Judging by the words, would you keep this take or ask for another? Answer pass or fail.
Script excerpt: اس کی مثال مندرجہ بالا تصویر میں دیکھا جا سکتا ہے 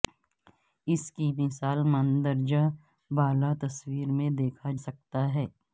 fail